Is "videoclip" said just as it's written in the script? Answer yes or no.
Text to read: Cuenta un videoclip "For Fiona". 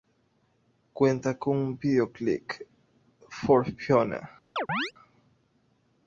yes